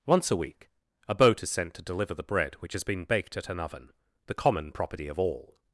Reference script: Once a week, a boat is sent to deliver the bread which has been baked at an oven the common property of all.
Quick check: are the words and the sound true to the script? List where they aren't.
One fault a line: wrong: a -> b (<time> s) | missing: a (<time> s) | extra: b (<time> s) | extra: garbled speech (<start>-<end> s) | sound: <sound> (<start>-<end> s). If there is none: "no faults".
no faults